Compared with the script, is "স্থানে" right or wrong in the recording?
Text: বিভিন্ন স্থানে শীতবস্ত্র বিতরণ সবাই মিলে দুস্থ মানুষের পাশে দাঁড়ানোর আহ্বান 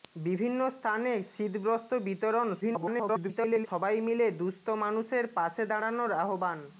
right